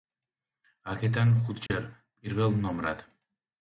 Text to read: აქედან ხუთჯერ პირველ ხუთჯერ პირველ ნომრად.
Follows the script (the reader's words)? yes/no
no